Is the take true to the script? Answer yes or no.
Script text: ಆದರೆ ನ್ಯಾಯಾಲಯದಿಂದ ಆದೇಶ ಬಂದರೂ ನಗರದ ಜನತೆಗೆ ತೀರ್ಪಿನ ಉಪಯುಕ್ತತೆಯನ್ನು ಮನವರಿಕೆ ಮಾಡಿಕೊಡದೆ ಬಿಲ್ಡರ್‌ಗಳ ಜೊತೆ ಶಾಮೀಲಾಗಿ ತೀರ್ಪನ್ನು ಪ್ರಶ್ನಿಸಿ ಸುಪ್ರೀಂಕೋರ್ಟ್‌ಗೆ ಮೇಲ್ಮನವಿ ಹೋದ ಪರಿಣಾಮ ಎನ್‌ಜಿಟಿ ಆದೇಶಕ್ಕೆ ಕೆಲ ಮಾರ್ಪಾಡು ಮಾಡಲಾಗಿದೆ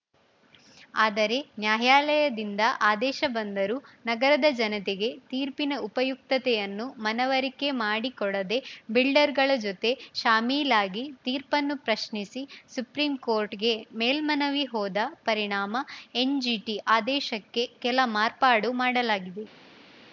yes